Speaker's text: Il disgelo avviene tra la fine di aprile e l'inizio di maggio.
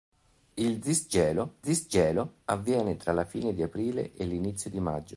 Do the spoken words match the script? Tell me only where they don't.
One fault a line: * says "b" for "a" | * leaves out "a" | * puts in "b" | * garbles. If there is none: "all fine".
* puts in "disgelo"